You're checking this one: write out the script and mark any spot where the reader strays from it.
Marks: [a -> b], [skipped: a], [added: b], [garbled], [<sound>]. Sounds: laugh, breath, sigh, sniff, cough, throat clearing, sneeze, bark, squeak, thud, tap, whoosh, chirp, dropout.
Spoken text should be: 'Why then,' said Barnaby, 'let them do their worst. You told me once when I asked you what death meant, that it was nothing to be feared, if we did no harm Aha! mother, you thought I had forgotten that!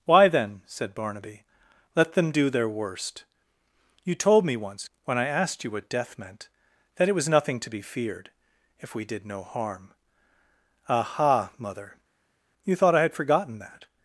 'Why then,' said Barnaby, 'let them do their worst. You told me once when I asked you what death meant, that it was nothing to be feared, if we did no harm Aha! mother, you thought I had forgotten that!